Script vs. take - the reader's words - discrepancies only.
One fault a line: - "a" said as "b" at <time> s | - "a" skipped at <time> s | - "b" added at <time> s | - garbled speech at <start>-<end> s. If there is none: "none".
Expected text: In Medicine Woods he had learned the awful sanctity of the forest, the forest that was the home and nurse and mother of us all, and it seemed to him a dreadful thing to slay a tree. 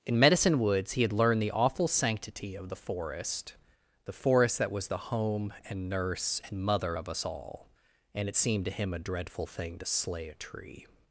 none